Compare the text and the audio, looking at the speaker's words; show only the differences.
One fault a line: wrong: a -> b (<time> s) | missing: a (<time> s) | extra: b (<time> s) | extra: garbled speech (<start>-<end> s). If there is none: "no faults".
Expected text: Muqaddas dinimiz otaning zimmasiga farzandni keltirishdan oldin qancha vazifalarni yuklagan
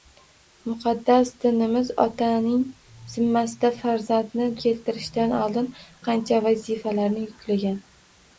no faults